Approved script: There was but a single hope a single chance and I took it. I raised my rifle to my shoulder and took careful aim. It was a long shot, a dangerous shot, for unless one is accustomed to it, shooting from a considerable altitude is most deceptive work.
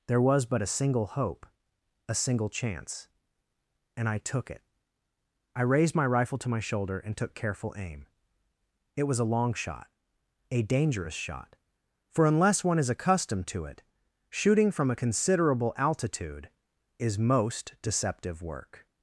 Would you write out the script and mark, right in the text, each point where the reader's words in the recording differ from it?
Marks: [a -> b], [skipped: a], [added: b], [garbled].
There was but a single hope a single chance and I took it. I raised my rifle to my shoulder and took careful aim. It was a long shot, a dangerous shot, for unless one is accustomed to it, shooting from a considerable altitude is most deceptive work.